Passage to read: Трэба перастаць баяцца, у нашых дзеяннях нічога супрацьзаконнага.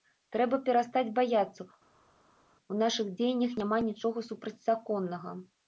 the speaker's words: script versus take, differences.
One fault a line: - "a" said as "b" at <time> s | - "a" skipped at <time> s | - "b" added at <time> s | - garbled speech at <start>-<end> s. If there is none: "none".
- "няма" added at 3.6 s